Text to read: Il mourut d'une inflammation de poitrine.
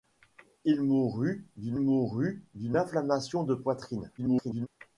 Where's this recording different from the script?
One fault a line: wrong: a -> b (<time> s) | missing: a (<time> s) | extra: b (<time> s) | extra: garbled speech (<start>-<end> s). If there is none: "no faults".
extra: mourut d'une (1.8 s)
extra: garbled speech (4.2-4.7 s)